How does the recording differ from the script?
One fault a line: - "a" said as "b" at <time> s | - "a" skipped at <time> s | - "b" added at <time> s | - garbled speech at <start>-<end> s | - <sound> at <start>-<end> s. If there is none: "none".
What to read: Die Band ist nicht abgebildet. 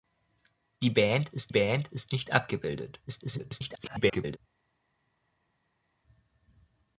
- "Band ist" added at 1.5 s
- garbled speech at 3.1-4.4 s